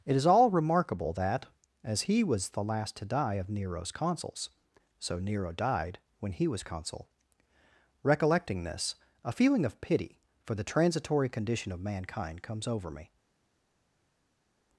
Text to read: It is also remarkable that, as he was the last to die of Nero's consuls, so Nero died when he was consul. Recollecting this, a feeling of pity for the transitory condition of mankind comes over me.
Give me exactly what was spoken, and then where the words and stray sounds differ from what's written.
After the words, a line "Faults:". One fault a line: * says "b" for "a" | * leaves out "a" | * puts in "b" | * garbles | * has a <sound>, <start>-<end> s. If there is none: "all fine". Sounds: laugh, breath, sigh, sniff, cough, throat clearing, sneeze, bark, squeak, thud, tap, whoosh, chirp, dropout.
It is all remarkable that, as he was the last to die of Nero's consuls, so Nero died when he was consul. Recollecting this, a feeling of pity for the transitory condition of mankind comes over me.
Faults:
* says "all" for "also"